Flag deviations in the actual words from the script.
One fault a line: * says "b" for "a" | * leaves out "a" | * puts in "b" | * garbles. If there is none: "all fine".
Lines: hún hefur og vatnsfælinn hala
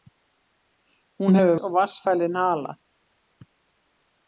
all fine